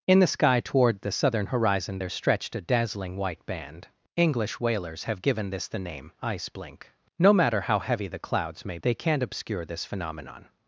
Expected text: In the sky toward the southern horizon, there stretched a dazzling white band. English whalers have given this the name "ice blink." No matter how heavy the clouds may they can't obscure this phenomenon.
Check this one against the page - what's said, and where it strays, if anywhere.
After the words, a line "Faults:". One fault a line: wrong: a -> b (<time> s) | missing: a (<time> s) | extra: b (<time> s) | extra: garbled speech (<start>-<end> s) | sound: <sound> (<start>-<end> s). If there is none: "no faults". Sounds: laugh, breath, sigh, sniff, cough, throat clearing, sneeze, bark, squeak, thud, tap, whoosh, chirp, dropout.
In the sky toward the southern horizon, there stretched a dazzling white band. English whalers have given this the name "ice blink." No matter how heavy the clouds may they can't obscure this phenomenon.
Faults:
no faults